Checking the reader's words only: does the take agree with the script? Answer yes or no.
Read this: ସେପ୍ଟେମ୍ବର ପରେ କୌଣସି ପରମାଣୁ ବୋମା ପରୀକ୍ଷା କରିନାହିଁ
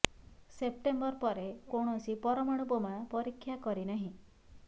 yes